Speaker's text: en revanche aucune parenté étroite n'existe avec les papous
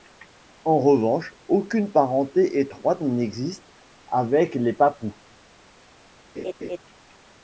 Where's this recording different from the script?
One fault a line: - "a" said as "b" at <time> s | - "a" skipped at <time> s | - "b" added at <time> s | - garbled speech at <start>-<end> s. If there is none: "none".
none